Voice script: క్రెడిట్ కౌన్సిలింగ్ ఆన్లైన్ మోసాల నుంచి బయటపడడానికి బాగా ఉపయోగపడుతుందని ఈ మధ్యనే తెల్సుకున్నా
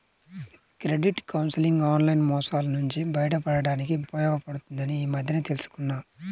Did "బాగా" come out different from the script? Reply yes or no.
yes